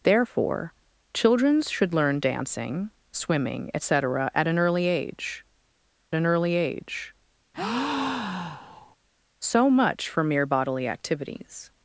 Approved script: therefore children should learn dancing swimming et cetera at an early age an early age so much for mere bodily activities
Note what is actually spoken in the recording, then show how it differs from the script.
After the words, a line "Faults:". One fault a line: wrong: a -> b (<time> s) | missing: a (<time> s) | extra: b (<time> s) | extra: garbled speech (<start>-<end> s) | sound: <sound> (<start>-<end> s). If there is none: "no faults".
therefore children should learn dancing swimming et cetera at an early age an early age so much for mere bodily activities
Faults:
sound: breath (7.5-9.0 s)